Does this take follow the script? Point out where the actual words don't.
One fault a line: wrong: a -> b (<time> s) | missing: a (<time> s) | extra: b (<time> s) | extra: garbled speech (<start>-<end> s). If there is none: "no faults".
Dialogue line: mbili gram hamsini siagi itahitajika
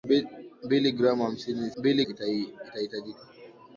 wrong: siagi -> mbili (1.8 s)